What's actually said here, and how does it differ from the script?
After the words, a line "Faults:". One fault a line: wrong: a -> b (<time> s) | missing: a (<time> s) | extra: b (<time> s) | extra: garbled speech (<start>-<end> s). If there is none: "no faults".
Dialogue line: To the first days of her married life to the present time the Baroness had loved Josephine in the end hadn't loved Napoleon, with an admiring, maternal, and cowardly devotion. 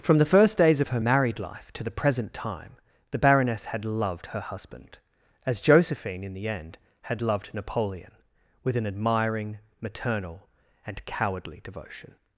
From the first days of her married life to the present time the Baroness had loved her husband, as Josephine in the end had loved Napoleon, with an admiring, maternal, and cowardly devotion.
Faults:
wrong: To -> From (0.0 s)
extra: her husband as (4.3 s)
wrong: hadn't -> had (7.0 s)